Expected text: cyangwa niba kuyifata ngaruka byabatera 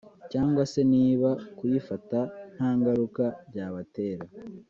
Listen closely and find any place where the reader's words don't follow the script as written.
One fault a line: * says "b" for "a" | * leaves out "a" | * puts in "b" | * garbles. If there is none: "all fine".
* puts in "se"
* puts in "nta"